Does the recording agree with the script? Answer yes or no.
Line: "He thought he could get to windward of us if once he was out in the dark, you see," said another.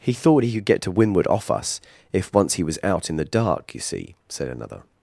no